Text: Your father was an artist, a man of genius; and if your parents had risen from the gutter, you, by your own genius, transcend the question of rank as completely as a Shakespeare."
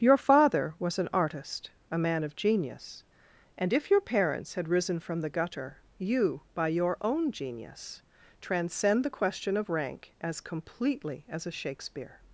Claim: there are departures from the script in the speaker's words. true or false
false